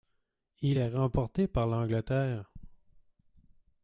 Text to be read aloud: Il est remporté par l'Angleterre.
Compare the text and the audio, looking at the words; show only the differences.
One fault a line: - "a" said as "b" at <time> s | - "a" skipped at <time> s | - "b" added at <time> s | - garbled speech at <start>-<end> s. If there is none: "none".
none